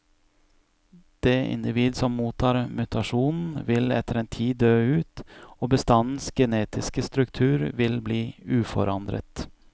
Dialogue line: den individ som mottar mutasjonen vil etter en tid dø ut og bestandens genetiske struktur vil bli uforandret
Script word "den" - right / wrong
wrong